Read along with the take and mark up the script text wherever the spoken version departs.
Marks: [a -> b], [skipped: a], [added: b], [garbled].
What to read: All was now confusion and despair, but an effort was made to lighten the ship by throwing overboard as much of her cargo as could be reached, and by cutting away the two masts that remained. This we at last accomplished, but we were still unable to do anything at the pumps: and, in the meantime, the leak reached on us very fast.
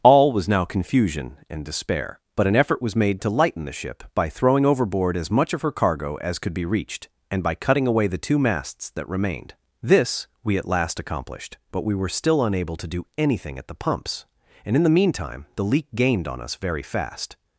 All was now confusion and despair, but an effort was made to lighten the ship by throwing overboard as much of her cargo as could be reached, and by cutting away the two masts that remained. This we at last accomplished, but we were still unable to do anything at the pumps: and, in the meantime, the leak [reached -> gained] on us very fast.